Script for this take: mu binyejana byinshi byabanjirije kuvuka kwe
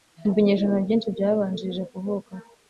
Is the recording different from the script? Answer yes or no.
no